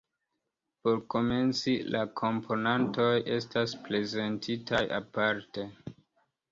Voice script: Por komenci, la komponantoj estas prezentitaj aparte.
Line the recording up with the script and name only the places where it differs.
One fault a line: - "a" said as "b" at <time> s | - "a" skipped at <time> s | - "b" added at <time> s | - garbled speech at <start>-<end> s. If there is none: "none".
none